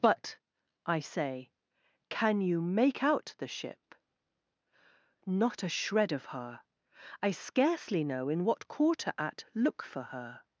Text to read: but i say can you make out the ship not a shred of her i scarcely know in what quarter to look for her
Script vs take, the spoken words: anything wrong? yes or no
yes